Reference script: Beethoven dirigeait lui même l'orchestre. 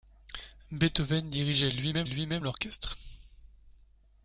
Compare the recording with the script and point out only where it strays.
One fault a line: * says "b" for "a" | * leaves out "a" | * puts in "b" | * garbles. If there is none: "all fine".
* puts in "lui même"